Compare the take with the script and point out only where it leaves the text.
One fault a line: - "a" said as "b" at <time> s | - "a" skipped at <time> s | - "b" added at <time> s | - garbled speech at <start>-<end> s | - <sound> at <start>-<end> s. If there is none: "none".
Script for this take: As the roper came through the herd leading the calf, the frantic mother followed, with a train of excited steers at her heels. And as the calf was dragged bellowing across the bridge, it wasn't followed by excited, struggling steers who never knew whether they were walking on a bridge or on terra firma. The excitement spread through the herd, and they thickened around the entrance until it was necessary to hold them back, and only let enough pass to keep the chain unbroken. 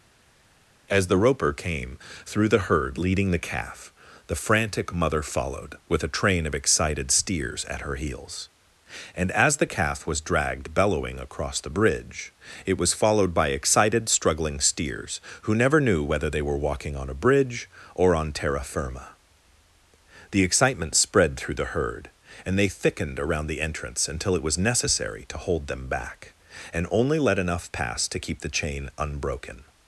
- "wasn't" said as "was" at 12.8 s